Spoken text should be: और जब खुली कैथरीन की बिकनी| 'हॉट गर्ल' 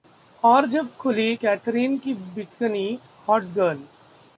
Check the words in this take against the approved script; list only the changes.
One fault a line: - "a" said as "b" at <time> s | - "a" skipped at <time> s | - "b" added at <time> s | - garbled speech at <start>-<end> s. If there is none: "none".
none